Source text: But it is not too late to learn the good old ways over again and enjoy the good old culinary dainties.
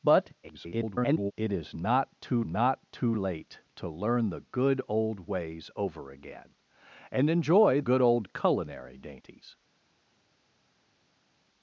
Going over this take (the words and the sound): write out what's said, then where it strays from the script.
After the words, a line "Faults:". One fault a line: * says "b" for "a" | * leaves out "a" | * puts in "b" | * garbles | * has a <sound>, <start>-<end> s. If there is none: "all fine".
But [garbled] it is not too not too late to learn the good old ways over again and enjoy good old culinary dainties.
Faults:
* garbles
* puts in "not too"
* leaves out "the"